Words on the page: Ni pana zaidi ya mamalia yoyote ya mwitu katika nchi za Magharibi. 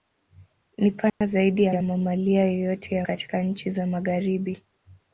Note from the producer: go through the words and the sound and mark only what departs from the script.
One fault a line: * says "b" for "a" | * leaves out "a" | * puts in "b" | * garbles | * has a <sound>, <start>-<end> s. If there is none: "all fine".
* has a dropout, 1.1-1.2 s
* puts in "ya"
* leaves out "mwitu"